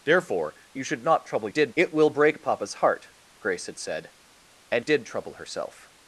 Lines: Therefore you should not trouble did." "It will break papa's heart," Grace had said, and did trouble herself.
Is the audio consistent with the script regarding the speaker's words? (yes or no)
yes